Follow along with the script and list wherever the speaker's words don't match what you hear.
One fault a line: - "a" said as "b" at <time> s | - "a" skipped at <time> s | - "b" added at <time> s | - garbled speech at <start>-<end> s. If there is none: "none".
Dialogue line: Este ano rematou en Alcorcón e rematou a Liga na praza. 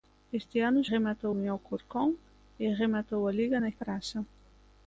none